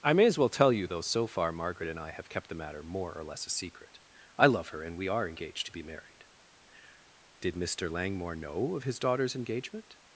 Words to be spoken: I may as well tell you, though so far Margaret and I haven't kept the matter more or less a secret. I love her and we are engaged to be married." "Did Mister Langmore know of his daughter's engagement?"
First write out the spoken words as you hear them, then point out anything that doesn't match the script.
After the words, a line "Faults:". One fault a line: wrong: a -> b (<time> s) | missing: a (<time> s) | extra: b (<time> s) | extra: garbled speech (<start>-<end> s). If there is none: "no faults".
I may as well tell you, though so far Margaret and I have kept the matter more or less a secret. I love her and we are engaged to be married." "Did Mister Langmore know of his daughter's engagement?"
Faults:
wrong: haven't -> have (2.1 s)